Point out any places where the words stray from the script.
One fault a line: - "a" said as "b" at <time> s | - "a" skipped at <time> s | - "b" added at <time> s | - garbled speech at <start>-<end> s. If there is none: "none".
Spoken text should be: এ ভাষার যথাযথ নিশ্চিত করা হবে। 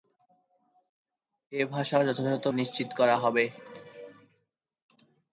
none